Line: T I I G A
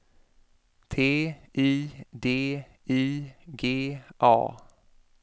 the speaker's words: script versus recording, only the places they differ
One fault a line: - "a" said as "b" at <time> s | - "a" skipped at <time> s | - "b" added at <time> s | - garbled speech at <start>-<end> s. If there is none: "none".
- "D" added at 2.2 s